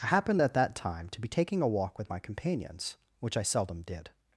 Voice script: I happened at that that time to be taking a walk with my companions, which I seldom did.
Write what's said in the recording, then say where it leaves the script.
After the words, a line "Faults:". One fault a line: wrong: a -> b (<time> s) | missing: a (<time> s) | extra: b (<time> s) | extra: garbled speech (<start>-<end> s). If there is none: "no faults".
I happened at that time to be taking a walk with my companions, which I seldom did.
Faults:
missing: that (0.8 s)